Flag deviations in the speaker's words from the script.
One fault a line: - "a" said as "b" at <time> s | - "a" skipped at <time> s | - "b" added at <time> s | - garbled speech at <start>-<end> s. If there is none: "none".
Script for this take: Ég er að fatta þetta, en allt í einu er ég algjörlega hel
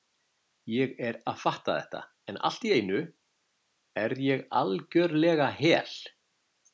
none